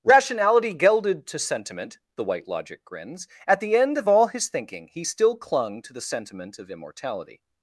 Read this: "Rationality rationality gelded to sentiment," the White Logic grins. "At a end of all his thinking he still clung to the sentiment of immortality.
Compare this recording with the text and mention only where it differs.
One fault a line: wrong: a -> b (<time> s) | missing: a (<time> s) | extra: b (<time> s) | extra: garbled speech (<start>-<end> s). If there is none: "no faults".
missing: rationality (0.7 s)
wrong: a -> the (3.6 s)